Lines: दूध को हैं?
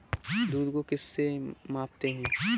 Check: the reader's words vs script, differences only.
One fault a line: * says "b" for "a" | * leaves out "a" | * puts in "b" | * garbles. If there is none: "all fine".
* puts in "किस से मापते"